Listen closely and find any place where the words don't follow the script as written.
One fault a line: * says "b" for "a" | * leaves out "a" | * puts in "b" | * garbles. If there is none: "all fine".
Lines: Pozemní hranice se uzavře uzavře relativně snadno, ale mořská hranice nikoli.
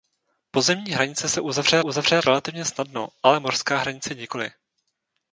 all fine